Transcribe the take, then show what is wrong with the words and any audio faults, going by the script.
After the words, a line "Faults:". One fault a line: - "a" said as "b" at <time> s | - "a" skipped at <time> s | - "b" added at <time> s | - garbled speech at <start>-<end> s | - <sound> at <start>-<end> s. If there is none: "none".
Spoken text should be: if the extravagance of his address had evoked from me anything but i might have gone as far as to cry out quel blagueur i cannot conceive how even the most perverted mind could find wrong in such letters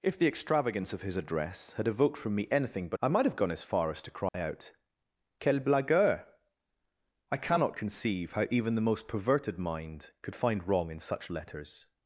if the extravagance of his address had evoked from me anything but i might have gone as far as to cry out quel blagueur i cannot conceive how even the most perverted mind could find wrong in such letters
Faults:
- dropout at 4.3-4.3 s